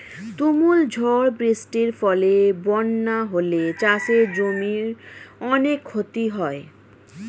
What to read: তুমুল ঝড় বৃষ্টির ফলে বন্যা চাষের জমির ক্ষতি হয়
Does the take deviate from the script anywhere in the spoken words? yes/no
yes